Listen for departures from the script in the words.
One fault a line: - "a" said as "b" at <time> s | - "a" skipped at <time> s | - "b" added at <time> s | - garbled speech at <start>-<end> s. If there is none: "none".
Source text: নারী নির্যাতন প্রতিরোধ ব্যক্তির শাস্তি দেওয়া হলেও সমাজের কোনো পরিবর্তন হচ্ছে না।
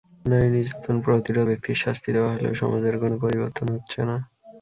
none